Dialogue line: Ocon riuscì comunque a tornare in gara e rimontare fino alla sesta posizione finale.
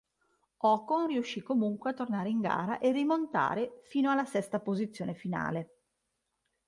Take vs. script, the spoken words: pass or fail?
pass